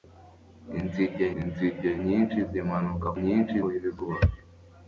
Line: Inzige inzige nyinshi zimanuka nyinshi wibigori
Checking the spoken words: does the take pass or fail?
pass